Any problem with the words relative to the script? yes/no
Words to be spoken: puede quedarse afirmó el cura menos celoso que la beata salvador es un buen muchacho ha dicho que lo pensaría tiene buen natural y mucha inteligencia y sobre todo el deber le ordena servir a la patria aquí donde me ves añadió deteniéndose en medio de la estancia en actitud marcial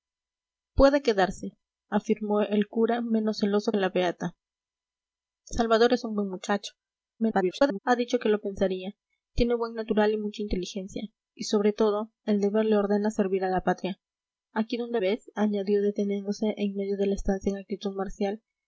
yes